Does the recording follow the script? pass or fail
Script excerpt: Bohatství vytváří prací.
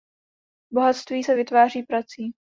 fail